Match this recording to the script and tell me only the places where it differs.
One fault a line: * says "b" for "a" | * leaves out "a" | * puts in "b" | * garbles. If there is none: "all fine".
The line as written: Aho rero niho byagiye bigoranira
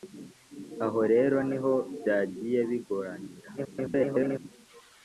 * garbles